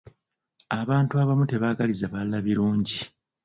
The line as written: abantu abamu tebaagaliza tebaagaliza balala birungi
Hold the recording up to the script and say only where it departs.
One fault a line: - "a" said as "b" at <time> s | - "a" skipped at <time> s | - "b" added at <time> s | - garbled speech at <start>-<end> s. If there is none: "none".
- "tebaagaliza" skipped at 2.0 s